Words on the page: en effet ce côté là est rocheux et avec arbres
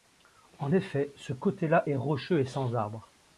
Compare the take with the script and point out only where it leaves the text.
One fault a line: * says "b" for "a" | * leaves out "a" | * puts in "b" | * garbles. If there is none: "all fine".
* says "sans" for "avec"